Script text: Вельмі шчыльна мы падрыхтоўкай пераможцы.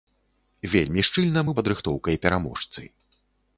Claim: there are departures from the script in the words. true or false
false